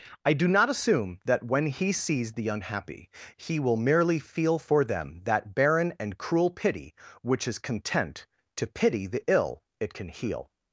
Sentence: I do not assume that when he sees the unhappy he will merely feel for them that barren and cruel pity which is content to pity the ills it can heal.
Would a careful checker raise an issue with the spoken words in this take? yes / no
yes